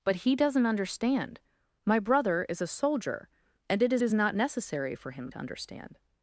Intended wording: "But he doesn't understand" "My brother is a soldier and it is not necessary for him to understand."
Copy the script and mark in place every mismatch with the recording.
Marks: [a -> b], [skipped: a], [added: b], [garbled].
"But he doesn't understand" "My brother is a soldier and it is [added: is] not necessary for him to understand."